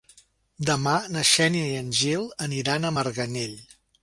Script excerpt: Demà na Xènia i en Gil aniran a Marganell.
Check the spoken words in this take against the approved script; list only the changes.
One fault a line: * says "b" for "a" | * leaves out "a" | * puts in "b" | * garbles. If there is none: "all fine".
all fine